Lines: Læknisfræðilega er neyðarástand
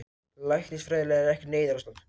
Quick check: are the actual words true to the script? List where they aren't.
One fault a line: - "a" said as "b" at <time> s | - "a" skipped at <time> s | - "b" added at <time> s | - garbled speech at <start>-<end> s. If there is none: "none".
- "ekkert" added at 1.4 s